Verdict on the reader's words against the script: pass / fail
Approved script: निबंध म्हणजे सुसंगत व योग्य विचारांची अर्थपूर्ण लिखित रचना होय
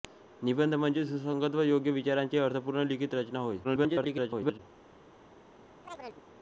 fail